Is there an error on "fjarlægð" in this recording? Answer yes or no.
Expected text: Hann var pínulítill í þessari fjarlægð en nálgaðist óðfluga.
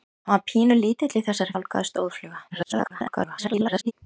yes